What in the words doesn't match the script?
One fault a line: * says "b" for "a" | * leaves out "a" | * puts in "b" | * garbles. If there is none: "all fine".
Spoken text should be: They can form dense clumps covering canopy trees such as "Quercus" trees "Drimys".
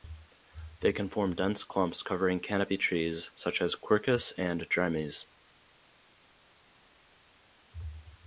* says "and" for "trees"